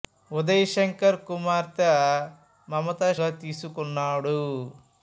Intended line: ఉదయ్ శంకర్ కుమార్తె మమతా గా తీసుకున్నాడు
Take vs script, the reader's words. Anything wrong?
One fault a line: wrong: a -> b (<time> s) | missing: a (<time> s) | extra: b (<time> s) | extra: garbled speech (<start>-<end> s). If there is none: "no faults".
no faults